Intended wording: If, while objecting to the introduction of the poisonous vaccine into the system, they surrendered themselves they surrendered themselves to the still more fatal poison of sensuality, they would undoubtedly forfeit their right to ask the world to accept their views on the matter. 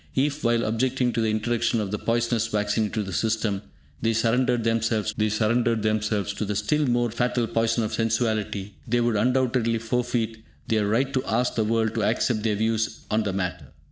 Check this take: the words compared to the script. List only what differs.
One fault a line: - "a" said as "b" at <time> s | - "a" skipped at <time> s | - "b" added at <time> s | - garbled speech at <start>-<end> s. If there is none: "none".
none